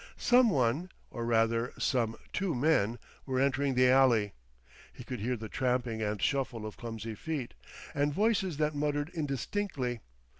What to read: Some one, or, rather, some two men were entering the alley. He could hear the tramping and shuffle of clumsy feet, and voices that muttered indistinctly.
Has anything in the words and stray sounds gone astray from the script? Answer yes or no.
no